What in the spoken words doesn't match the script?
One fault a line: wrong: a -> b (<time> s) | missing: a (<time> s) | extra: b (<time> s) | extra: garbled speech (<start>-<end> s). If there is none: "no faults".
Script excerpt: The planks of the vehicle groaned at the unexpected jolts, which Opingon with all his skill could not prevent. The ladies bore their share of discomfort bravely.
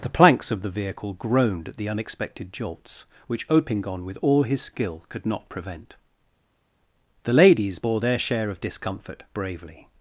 no faults